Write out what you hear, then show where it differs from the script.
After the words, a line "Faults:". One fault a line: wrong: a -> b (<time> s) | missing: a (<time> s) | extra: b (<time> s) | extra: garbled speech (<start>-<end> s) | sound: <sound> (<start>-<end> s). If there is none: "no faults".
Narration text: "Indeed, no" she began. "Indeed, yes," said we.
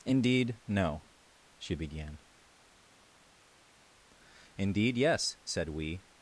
"Indeed, no" she began. "Indeed, yes," said we.
Faults:
no faults